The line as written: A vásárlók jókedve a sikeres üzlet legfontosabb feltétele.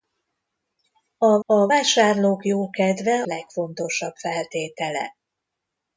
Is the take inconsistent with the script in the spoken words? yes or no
yes